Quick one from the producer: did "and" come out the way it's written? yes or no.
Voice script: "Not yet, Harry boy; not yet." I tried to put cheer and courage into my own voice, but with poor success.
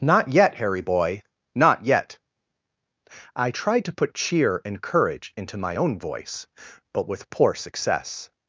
yes